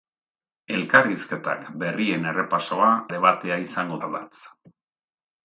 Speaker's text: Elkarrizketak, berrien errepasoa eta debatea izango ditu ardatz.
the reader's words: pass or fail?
fail